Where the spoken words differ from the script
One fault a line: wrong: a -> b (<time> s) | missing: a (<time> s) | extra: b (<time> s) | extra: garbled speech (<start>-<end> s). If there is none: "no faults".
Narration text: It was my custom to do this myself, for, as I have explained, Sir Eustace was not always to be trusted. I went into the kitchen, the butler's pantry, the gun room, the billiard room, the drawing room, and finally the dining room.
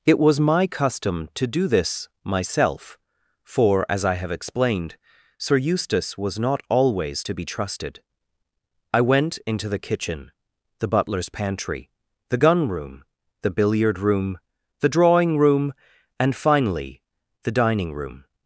no faults